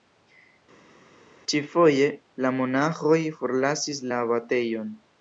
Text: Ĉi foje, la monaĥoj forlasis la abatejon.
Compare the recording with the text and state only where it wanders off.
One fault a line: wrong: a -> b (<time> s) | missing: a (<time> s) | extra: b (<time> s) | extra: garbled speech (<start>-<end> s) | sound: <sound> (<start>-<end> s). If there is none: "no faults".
no faults